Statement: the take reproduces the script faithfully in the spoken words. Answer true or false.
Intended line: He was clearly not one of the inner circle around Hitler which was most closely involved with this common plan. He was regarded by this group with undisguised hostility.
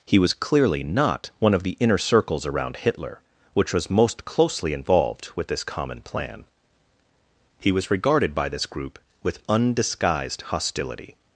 false